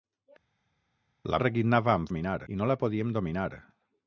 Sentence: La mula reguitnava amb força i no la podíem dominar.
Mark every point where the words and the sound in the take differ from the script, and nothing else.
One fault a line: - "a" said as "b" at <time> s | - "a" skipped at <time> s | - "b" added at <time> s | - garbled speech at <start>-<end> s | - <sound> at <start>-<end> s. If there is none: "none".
- "mula" skipped at 1.4 s
- "força" said as "dominar" at 2.1 s